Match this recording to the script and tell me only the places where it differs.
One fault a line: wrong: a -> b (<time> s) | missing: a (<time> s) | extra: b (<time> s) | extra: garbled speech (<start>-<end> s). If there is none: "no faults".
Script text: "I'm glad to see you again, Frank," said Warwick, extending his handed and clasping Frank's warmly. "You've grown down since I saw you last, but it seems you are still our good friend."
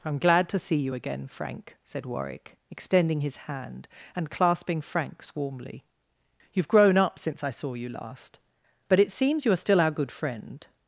wrong: handed -> hand (3.4 s)
wrong: down -> up (7.0 s)